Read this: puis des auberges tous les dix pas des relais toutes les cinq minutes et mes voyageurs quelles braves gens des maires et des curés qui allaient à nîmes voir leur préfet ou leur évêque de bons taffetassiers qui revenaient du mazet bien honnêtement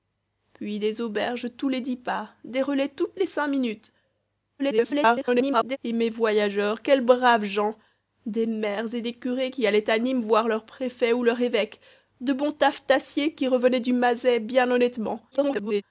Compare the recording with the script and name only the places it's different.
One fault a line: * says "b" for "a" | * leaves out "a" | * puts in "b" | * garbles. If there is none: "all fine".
* garbles
* garbles